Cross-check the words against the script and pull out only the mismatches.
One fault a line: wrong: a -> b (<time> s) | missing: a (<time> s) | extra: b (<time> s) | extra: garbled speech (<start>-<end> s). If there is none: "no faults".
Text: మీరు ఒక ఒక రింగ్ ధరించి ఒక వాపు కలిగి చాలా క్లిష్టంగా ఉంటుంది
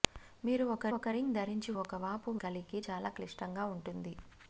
no faults